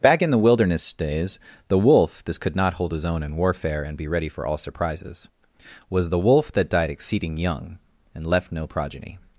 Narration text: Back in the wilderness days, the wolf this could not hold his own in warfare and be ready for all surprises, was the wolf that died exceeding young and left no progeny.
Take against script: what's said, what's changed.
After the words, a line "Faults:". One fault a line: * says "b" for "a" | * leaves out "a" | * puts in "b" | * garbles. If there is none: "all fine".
Back in the wilderness days, the wolf this could not hold his own in warfare and be ready for all surprises, was the wolf that died exceeding young and left no progeny.
Faults:
all fine